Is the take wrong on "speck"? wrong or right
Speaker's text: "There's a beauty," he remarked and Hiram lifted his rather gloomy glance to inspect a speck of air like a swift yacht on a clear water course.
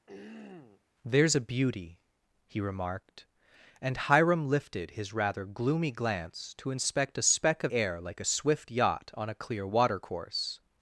right